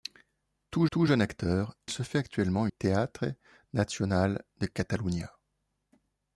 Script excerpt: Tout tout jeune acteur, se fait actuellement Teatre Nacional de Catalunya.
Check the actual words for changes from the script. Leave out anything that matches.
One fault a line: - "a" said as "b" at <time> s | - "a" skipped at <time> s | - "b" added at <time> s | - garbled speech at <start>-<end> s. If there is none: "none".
none